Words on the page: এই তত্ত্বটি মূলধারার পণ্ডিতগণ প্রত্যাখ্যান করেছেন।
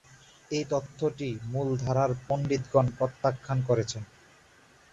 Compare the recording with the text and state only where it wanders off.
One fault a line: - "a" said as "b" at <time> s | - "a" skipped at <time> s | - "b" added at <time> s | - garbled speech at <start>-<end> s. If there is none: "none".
none